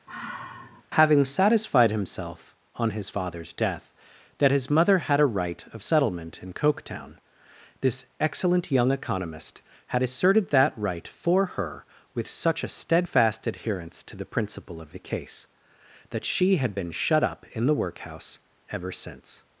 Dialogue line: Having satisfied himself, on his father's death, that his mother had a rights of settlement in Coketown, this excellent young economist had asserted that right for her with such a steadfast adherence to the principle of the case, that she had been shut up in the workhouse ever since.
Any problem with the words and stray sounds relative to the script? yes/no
yes